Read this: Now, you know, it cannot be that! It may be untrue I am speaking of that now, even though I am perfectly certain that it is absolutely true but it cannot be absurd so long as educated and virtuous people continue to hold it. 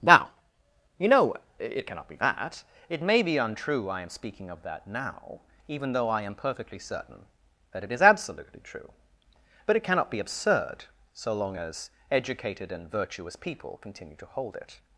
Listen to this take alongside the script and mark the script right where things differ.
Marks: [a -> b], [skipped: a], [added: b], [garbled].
Now, you know, it cannot be that! It may be untrue I am speaking of that now, even though I am perfectly certain that it is absolutely true but it cannot be absurd so long as educated and virtuous people continue to hold it.